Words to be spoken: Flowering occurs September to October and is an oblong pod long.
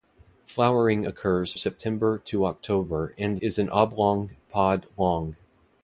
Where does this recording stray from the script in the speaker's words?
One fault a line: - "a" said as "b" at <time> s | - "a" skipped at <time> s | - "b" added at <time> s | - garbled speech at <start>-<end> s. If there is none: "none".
none